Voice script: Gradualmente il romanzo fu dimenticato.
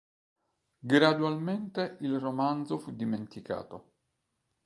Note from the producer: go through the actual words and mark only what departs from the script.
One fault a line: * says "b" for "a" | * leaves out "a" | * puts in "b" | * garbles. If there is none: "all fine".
all fine